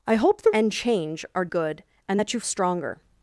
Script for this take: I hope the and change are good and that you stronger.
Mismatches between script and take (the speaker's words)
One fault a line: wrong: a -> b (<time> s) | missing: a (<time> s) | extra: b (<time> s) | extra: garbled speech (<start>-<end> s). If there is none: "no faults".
no faults